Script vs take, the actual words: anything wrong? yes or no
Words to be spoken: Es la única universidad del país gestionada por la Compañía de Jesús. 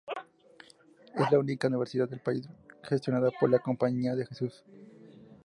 no